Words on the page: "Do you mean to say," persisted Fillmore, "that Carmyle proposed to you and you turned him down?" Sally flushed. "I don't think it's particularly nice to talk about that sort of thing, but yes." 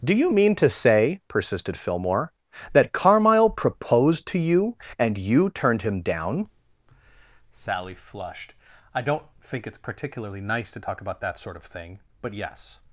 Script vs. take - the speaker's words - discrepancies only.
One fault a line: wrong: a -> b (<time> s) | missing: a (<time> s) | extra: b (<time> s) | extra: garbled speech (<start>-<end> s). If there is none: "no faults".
no faults